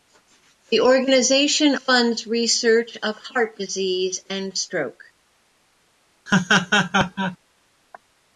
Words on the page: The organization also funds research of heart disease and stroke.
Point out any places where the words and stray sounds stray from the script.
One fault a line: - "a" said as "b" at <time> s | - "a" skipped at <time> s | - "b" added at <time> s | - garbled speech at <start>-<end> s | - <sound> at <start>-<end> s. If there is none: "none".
- "also" skipped at 1.8 s
- laugh at 6.3-7.4 s